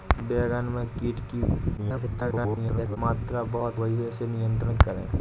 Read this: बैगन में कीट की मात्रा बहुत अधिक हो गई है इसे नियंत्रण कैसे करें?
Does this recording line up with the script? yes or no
no